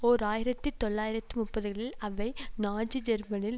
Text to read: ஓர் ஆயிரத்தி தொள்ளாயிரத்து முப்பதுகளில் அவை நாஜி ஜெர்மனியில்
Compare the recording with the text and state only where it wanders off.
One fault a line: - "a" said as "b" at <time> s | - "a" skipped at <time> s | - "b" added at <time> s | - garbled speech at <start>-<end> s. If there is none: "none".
none